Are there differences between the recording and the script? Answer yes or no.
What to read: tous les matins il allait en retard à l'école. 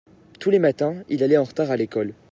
no